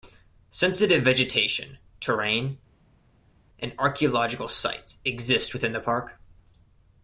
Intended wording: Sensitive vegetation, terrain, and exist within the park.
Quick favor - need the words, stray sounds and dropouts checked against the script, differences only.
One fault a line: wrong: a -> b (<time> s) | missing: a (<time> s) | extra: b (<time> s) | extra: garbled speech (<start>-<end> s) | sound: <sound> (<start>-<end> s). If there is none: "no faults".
extra: archaeological sites (3.8 s)